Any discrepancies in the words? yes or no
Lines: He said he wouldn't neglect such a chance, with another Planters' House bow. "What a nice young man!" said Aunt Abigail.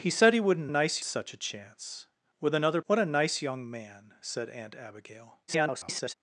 yes